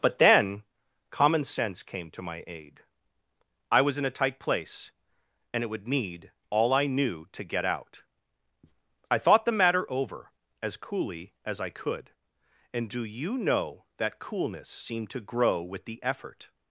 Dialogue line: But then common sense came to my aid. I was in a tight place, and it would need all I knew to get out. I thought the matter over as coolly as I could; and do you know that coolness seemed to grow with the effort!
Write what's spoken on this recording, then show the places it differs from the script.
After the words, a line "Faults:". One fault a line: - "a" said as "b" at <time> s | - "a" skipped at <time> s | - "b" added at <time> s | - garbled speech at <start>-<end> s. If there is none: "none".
But then common sense came to my aid. I was in a tight place, and it would need all I knew to get out. I thought the matter over as coolly as I could; and do you know that coolness seemed to grow with the effort!
Faults:
none